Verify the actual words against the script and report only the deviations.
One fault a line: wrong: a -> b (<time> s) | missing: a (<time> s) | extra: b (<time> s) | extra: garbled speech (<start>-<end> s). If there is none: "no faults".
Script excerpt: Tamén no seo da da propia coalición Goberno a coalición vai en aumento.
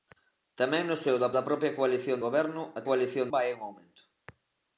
no faults